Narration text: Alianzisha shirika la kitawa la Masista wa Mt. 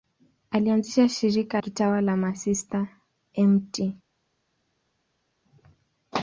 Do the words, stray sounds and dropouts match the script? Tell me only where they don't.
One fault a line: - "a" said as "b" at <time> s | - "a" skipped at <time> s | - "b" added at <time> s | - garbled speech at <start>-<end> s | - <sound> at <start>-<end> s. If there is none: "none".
- "la" skipped at 1.6 s
- "wa" skipped at 2.9 s